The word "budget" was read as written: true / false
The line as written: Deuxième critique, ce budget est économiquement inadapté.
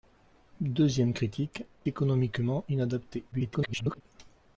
false